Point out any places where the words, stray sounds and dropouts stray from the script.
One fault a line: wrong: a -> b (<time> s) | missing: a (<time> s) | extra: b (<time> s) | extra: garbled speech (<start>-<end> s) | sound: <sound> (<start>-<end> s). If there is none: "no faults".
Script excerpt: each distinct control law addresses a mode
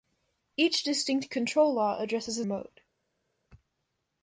no faults